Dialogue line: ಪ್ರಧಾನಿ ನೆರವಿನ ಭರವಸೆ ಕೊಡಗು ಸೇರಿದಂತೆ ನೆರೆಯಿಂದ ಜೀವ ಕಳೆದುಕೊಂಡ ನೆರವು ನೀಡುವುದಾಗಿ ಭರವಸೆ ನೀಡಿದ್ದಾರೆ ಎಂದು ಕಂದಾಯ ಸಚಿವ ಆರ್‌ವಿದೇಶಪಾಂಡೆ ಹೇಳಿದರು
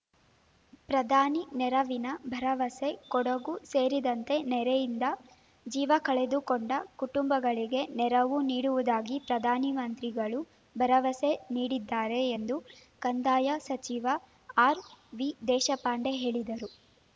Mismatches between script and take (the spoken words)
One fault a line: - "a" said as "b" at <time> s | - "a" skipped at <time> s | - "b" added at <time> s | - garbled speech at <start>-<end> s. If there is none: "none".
- "ಕುಟುಂಬಗಳಿಗೆ" added at 7.0 s
- "ಪ್ರಧಾನಮಂತ್ರಿಗಳು" added at 9.3 s